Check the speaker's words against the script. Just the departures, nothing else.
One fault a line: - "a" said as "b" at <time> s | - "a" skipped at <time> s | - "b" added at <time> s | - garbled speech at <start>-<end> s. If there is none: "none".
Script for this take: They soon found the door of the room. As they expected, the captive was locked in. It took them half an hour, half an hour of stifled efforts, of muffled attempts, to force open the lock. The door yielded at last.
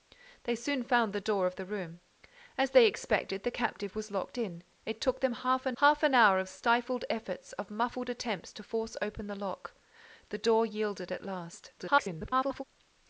- "hour" skipped at 5.8 s
- garbled speech at 11.8-12.6 s